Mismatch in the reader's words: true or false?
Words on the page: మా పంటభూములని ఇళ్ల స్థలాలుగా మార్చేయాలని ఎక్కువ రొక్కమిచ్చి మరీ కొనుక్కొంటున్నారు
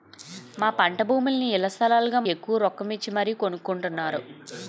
true